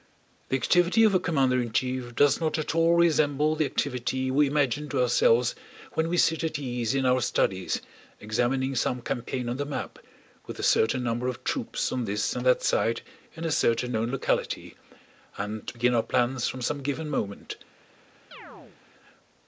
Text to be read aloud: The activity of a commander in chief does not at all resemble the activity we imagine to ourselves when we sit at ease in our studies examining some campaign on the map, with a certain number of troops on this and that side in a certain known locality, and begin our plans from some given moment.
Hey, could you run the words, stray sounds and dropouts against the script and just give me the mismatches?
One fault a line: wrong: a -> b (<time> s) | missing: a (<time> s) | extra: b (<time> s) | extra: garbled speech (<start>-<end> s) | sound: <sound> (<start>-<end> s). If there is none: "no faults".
sound: chirp (18.3-18.8 s)